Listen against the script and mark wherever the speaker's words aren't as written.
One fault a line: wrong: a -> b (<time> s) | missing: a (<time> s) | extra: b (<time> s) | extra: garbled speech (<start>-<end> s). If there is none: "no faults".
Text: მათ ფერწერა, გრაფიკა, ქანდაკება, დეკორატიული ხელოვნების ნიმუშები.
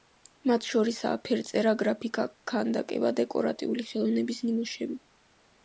extra: შორისაა (0.7 s)